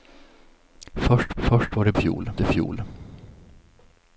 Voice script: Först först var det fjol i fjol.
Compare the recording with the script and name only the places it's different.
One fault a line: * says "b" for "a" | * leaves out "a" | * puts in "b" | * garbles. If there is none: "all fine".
all fine